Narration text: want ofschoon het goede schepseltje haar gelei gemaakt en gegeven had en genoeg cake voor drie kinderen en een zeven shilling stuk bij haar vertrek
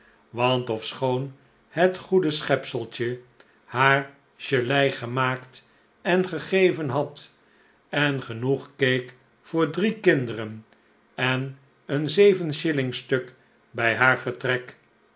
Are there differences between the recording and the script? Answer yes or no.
no